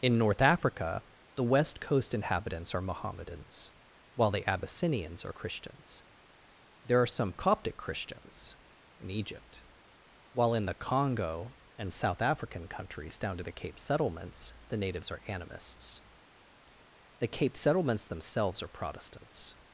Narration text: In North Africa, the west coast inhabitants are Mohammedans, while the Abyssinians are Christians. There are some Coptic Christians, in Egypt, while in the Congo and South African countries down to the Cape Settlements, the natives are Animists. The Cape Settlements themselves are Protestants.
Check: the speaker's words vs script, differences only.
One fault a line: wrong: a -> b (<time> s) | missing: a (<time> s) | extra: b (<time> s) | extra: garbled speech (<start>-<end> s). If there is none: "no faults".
no faults